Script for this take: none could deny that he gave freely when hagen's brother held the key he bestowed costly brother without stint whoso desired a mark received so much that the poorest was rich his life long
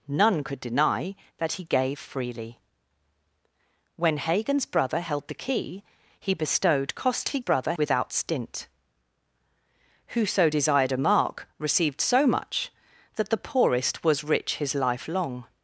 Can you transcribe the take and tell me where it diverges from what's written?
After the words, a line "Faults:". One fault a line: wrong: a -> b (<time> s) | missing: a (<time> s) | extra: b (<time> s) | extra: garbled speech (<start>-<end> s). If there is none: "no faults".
none could deny that he gave freely when hagen's brother held the key he bestowed costly brother without stint whoso desired a mark received so much that the poorest was rich his life long
Faults:
no faults